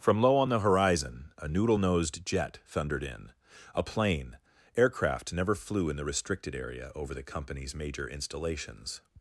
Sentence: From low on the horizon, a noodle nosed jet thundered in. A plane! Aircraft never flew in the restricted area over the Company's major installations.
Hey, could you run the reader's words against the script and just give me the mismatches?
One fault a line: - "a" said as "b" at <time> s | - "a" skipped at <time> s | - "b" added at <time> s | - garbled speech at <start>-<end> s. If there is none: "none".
none